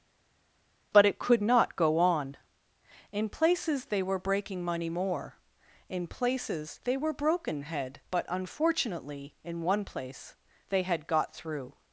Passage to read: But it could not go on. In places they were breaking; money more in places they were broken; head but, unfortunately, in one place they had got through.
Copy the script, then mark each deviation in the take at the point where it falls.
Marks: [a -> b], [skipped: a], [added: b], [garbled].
But it could not go on. In places they were breaking; money more in places they were broken; head but, unfortunately, in one place they had got through.